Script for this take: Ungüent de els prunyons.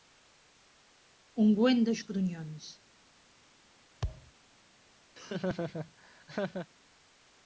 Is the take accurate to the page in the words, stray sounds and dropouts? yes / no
no